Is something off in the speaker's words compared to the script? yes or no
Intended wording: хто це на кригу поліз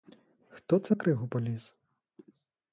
yes